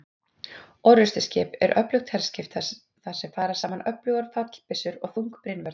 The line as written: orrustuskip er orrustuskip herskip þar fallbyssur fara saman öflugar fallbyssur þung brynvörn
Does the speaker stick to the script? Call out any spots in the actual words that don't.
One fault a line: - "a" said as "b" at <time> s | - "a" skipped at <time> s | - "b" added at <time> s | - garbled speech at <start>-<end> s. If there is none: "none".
- "orrustuskip" said as "öflugt" at 1.8 s
- "fallbyssur" said as "sem" at 3.2 s
- "og" added at 5.0 s